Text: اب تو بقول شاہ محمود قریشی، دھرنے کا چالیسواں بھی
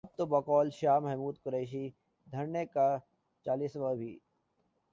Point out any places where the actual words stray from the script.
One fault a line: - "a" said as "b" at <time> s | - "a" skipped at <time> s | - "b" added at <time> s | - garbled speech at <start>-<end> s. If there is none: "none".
none